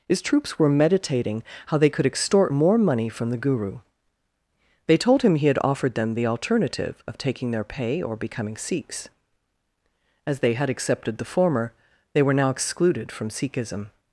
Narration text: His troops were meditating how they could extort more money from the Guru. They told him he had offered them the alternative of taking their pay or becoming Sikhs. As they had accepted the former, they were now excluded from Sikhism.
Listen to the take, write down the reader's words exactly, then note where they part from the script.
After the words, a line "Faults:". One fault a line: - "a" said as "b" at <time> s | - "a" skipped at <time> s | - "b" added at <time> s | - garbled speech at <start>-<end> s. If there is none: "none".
His troops were meditating how they could extort more money from the Guru. They told him he had offered them the alternative of taking their pay or becoming Sikhs. As they had accepted the former, they were now excluded from Sikhism.
Faults:
none